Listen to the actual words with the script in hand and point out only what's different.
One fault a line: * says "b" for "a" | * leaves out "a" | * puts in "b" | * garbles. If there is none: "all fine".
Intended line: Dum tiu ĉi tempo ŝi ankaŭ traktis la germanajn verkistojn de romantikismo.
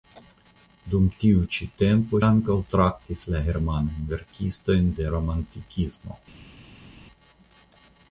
* leaves out "ŝi"